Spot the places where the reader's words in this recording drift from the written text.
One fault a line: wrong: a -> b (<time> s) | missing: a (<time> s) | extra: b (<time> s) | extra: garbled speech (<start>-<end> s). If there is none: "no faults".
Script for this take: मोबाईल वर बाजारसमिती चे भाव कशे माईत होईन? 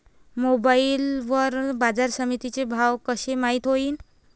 no faults